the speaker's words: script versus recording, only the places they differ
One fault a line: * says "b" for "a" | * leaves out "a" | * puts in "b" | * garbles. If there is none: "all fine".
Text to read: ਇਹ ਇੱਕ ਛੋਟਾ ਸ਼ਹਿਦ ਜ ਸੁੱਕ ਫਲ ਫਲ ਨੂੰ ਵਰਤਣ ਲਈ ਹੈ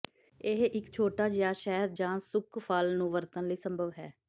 * puts in "ਜਿਹਾ"
* leaves out "ਫਲ"
* puts in "ਸੰਭਵ"